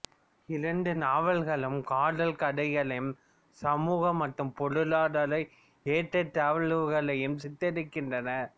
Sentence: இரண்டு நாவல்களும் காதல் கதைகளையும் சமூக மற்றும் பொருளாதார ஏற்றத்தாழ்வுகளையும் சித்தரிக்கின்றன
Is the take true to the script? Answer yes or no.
yes